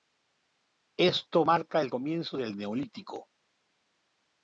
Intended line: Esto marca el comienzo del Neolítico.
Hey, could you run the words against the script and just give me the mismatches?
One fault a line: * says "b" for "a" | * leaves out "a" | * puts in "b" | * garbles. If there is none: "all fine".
all fine